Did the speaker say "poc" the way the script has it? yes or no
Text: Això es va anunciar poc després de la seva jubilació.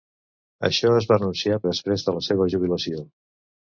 no